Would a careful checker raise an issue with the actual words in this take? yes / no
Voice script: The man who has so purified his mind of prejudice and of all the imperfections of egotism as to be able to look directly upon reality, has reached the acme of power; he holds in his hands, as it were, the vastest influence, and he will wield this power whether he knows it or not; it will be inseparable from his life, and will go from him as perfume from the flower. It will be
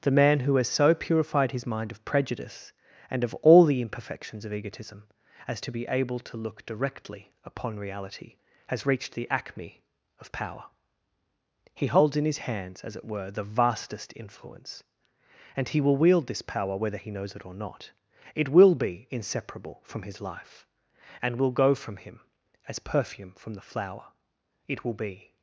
no